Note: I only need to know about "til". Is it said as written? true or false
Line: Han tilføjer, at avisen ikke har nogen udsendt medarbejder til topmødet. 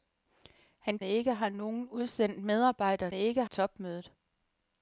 false